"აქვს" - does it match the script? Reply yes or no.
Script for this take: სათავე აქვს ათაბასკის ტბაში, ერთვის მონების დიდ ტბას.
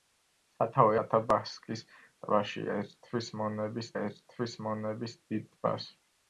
no